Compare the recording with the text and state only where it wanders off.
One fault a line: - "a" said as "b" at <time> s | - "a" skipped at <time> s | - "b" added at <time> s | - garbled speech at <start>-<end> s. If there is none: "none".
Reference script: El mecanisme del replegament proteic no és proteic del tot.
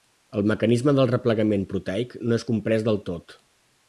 - "proteic" said as "comprès" at 2.5 s